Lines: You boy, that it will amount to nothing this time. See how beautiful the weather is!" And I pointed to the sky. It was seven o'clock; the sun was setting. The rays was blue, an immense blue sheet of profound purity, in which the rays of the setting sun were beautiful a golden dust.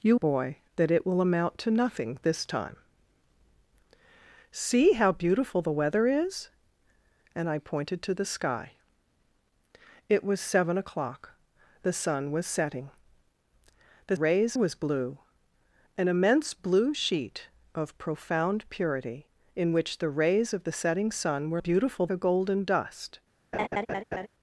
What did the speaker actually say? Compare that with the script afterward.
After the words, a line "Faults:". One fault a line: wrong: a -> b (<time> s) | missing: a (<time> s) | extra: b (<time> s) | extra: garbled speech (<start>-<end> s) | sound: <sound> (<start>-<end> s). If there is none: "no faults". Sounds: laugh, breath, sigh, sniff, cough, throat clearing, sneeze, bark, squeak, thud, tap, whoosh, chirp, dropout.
You boy, that it will amount to nothing this time. See how beautiful the weather is!" And I pointed to the sky. It was seven o'clock; the sun was setting. The rays was blue, an immense blue sheet of profound purity, in which the rays of the setting sun were beautiful a golden dust.
Faults:
sound: laugh (23.5-24.3 s)